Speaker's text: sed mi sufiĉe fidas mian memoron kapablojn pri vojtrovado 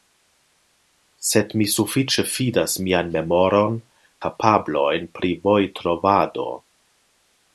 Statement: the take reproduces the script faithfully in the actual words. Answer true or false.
true